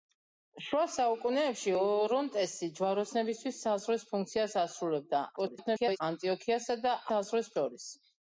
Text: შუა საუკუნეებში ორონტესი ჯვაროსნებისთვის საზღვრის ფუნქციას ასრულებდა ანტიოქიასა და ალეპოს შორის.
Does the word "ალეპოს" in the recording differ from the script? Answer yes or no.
yes